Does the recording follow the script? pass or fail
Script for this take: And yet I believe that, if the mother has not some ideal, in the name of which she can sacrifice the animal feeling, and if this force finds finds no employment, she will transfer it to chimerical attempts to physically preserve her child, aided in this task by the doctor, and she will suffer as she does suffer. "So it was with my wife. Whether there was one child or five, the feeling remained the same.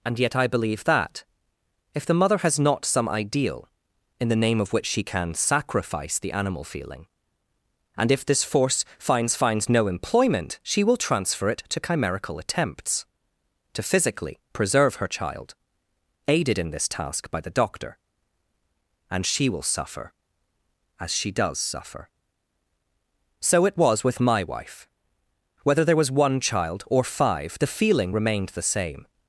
pass